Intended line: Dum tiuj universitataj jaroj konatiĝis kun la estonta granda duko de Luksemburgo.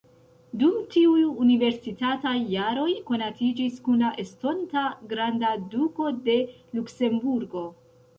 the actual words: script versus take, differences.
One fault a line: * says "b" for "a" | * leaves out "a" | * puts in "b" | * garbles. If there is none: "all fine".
all fine